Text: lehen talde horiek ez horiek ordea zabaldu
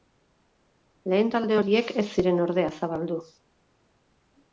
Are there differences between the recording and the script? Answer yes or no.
yes